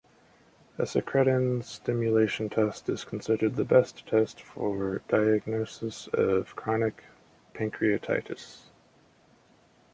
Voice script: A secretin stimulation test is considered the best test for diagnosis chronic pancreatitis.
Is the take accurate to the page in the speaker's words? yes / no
no